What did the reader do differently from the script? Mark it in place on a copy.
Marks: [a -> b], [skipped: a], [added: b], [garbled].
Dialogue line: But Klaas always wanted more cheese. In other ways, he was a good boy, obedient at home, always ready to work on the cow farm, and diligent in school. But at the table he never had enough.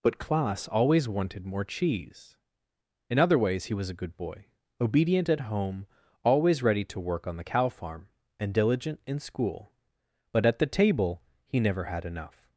But Klaas always wanted more cheese. In other ways, he was a good boy, obedient at home, always ready to work on the cow farm, and diligent in school. But at the table he never had enough.